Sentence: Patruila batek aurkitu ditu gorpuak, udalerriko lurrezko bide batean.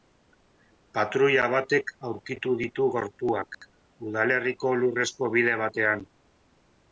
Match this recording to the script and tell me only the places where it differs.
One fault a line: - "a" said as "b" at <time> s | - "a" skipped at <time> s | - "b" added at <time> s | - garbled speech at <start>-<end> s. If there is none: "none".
none